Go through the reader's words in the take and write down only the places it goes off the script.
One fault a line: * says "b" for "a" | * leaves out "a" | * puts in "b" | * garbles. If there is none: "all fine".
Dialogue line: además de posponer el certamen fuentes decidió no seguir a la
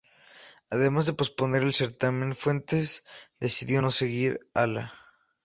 all fine